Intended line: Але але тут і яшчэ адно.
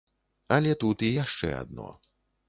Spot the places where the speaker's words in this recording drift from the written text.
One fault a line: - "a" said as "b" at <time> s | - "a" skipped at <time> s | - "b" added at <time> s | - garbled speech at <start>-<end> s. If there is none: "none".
- "але" skipped at 0.7 s